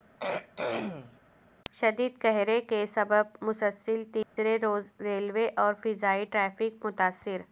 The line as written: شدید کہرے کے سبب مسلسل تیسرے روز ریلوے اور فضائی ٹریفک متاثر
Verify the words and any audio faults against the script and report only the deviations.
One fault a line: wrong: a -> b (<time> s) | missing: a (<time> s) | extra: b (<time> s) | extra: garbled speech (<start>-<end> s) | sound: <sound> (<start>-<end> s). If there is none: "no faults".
sound: throat clearing (0.2-1.2 s)
sound: dropout (4.2-4.4 s)